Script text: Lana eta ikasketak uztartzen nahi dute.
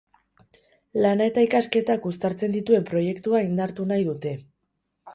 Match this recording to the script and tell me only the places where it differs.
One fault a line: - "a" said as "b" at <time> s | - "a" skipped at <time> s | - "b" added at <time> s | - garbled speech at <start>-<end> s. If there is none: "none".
- "dituen proiektua indartu" added at 2.6 s